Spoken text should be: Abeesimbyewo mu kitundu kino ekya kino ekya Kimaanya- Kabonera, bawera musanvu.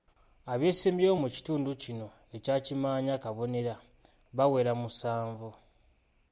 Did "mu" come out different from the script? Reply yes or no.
no